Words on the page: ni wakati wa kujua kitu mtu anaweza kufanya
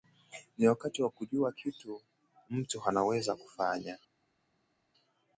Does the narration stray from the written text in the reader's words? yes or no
no